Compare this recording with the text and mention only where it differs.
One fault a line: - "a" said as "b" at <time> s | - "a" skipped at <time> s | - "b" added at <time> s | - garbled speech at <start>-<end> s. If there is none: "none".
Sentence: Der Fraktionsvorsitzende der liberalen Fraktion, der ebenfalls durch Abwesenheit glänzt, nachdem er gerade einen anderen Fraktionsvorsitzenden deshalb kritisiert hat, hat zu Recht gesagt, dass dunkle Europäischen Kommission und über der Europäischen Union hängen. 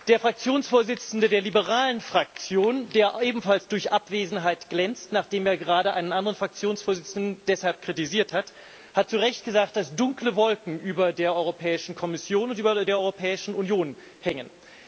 - "Wolken über der" added at 10.3 s